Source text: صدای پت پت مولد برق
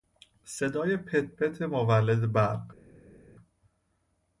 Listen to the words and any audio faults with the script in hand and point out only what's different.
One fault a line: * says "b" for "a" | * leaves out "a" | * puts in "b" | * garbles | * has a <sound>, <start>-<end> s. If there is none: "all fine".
all fine